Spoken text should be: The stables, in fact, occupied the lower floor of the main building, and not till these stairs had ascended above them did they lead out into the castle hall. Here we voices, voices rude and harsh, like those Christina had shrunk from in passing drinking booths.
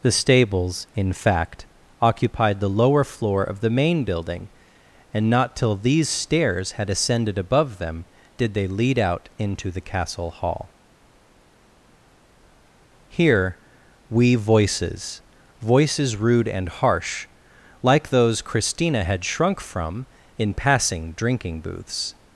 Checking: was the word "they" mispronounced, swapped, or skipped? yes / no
no